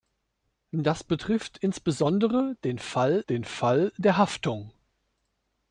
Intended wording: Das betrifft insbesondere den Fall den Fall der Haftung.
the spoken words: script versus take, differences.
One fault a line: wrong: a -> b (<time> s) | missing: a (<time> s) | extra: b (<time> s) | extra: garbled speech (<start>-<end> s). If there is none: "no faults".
no faults